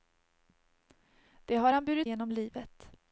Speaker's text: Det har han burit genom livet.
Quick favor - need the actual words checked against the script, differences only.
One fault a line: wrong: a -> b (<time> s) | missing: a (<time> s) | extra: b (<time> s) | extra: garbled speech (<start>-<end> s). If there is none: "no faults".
no faults